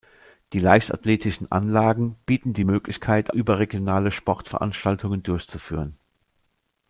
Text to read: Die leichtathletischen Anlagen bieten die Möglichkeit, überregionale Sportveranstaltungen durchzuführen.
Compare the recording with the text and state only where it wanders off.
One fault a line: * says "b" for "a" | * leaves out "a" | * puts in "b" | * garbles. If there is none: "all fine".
all fine